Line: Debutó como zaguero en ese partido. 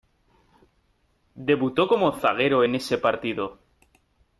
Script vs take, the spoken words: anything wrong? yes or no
no